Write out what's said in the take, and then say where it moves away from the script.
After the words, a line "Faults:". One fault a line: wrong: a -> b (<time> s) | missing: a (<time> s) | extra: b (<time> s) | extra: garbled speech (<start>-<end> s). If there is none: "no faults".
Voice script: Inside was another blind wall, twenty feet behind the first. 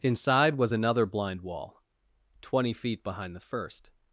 Inside was another blind wall, twenty feet behind the first.
Faults:
no faults